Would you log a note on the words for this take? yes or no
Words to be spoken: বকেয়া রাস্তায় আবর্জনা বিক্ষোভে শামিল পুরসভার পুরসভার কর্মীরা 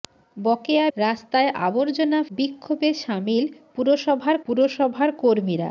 no